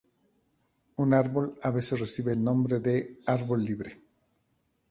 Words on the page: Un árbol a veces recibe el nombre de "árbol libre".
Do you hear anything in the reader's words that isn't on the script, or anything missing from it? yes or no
no